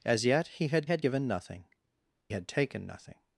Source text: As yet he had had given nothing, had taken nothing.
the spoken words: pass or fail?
pass